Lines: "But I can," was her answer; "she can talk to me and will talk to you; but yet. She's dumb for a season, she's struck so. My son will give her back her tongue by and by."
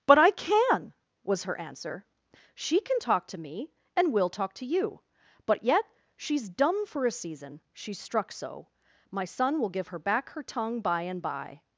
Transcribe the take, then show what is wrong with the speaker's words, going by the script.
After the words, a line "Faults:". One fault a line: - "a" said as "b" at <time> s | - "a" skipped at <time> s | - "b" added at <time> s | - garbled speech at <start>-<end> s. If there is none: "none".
"But I can," was her answer; "she can talk to me and will talk to you; but yet. She's dumb for a season, she's struck so. My son will give her back her tongue by and by."
Faults:
none